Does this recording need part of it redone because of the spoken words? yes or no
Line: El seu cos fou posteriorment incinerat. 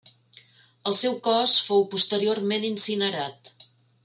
no